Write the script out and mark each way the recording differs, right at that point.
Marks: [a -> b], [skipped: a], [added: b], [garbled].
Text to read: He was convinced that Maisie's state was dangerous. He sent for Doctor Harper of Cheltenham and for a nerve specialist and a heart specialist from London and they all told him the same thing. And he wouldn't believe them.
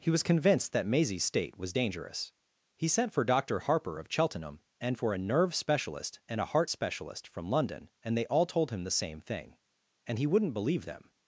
He was convinced that Maisie's state was dangerous. He sent for Doctor Harper of Cheltenham and for a nerve specialist and a heart specialist from London and they all told him the same thing. And he wouldn't believe them.